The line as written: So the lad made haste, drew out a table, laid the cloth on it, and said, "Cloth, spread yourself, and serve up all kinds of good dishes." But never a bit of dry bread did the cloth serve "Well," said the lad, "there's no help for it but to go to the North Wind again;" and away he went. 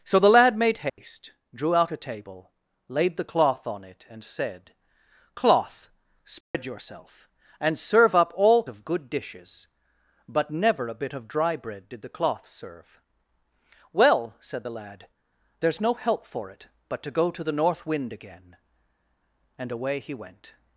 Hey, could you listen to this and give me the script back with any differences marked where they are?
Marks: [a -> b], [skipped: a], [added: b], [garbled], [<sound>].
So the lad made haste, [dropout] drew out a table, laid the cloth on it, and said, "Cloth, spread [dropout] yourself, and serve up all [skipped: kinds] of good dishes." But never a bit of dry bread did the cloth serve "Well," said the lad, "there's no help for it but to go to the North Wind again;" and away he went.